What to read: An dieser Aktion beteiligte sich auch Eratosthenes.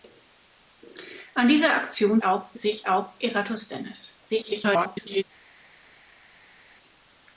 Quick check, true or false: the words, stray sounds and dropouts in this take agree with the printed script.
false